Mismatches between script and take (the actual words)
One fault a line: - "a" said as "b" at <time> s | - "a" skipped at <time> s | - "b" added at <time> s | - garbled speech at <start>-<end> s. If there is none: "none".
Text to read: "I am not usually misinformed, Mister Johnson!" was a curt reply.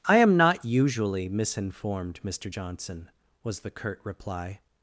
- "a" said as "the" at 3.6 s